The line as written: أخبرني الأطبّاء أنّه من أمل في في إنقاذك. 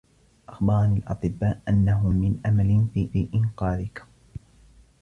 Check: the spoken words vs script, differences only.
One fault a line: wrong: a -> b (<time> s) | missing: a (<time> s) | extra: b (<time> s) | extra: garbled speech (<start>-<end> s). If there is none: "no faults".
no faults